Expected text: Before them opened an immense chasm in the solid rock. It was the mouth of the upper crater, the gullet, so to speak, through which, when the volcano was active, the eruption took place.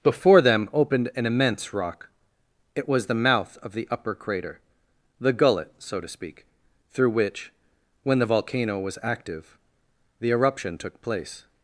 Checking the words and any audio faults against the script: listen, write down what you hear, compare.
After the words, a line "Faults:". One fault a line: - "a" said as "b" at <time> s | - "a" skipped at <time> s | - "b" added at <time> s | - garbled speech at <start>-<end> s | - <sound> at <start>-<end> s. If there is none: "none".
Before them opened an immense rock. It was the mouth of the upper crater, the gullet, so to speak, through which, when the volcano was active, the eruption took place.
Faults:
- "chasm in the solid" skipped at 1.7 s